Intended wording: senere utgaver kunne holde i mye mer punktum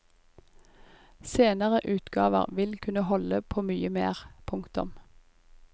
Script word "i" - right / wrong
wrong